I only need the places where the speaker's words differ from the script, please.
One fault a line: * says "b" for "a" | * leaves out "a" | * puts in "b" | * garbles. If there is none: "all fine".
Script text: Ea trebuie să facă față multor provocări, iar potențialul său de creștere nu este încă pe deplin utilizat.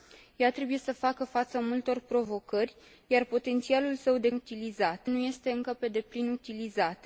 * says "utilizat" for "creștere"